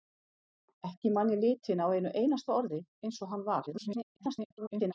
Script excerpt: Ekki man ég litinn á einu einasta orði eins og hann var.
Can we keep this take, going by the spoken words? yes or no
no